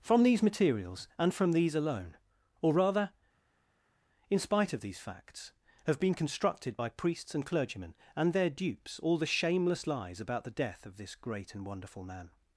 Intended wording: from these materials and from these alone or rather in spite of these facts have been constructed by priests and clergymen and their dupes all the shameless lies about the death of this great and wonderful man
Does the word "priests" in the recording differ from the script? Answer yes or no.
no